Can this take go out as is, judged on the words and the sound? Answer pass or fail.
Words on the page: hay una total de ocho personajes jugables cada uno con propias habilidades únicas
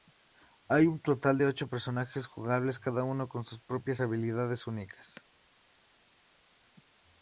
fail